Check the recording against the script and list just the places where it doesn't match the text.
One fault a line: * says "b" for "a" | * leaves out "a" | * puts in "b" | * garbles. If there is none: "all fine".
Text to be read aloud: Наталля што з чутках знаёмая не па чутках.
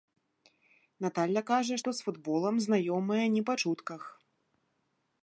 * puts in "кажа"
* says "футболам" for "чутках"